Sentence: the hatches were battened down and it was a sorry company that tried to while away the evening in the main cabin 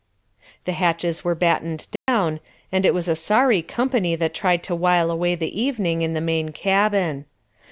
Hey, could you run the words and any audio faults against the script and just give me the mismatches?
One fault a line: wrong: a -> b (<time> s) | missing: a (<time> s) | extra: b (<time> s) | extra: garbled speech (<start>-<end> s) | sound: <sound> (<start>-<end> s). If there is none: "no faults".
sound: dropout (2.0-2.1 s)